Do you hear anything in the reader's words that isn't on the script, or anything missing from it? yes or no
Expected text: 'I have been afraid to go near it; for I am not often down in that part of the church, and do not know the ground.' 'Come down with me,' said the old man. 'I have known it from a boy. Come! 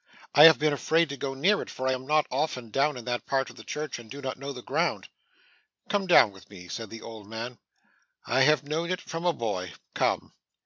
no